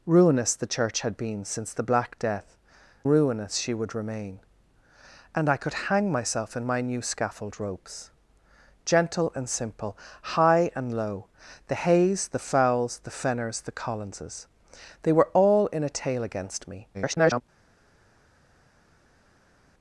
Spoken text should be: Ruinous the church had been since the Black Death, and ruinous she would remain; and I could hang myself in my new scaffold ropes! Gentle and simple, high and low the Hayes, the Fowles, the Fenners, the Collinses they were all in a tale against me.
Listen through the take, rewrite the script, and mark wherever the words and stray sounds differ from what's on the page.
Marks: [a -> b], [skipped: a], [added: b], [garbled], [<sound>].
Ruinous the church had been since the Black Death, [skipped: and] ruinous she would remain; and I could hang myself in my new scaffold ropes! Gentle and simple, high and low the Hayes, the Fowles, the Fenners, the Collinses they were all in a tale against me. [garbled]